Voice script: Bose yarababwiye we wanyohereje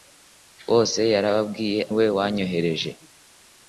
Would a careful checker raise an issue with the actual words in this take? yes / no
no